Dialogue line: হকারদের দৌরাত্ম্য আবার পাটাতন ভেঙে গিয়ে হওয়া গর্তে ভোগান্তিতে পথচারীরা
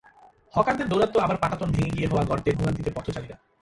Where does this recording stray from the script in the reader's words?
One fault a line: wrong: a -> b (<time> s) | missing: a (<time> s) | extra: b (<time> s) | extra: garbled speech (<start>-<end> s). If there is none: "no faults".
no faults